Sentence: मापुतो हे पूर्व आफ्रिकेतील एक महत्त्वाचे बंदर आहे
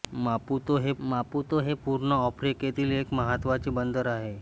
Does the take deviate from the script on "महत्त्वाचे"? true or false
false